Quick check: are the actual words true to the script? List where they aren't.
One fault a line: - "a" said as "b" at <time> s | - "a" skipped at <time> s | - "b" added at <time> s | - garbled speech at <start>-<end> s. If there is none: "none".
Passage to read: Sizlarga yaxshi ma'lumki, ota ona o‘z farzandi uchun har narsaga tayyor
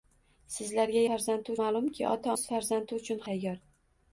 - "yaxshi" said as "farzandi" at 1.1 s
- "ona" skipped at 2.4 s
- "har narsaga" skipped at 3.3 s